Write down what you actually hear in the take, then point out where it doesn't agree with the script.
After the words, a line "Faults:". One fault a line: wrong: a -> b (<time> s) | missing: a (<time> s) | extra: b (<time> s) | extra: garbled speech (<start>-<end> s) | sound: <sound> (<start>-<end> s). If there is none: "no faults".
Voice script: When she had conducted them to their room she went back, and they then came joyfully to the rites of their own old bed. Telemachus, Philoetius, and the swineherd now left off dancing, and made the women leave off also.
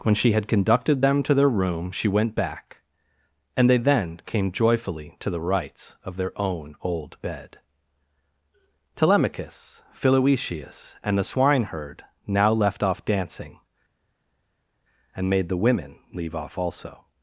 When she had conducted them to their room she went back, and they then came joyfully to the rites of their own old bed. Telemachus, Philoetius, and the swineherd now left off dancing, and made the women leave off also.
Faults:
no faults